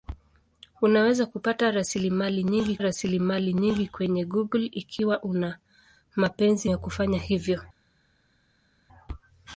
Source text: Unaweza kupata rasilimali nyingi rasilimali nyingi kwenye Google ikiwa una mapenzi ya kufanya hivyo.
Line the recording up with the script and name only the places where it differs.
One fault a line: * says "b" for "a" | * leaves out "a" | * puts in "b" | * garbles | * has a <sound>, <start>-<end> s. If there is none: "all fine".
all fine